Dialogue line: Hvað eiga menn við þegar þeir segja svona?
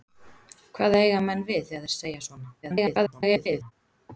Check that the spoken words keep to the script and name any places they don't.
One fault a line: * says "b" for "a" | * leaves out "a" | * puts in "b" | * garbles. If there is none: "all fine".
* garbles